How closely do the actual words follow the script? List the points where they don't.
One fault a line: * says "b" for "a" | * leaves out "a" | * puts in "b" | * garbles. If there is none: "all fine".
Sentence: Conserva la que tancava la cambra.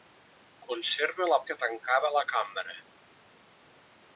all fine